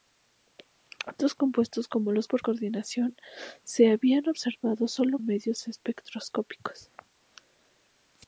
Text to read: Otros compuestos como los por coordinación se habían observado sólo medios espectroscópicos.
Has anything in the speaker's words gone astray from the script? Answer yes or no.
no